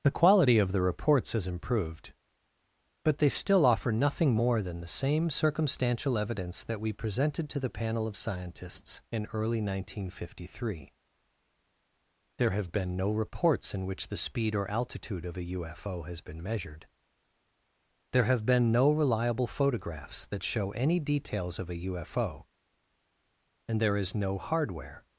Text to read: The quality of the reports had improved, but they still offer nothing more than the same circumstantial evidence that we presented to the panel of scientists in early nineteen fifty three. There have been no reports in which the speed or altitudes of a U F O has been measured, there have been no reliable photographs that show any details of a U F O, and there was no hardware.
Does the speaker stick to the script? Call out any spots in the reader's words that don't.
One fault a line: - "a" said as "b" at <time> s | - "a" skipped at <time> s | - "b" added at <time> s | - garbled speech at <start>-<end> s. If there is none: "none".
- "had" said as "has" at 1.3 s
- "altitudes" said as "altitude" at 14.7 s
- "was" said as "is" at 24.0 s